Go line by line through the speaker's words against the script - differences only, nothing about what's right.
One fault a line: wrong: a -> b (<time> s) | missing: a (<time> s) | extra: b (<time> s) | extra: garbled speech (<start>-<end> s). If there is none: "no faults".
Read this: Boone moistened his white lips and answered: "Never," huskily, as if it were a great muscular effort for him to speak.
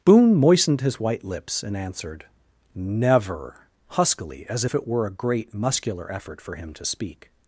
no faults